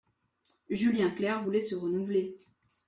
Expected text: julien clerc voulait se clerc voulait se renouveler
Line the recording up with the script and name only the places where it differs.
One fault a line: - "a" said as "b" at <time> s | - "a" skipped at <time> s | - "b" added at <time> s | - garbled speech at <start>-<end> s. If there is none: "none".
- "clerc voulait se" skipped at 1.7 s